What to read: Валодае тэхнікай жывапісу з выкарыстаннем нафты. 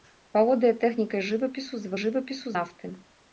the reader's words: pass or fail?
fail